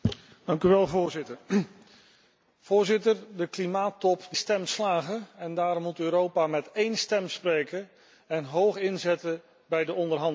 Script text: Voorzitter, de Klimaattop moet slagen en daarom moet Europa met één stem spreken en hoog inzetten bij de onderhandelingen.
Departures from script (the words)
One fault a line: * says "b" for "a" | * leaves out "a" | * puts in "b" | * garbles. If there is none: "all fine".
* says "stem" for "moet"